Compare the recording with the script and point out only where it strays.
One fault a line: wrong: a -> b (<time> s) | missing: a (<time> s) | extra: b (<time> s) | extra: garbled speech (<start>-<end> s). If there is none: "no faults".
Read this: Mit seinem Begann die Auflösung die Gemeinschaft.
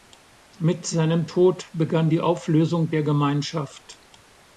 extra: Tod (1.2 s)
wrong: die -> der (2.9 s)